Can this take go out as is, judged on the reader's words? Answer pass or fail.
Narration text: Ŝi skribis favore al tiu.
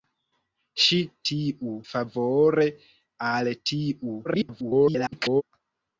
fail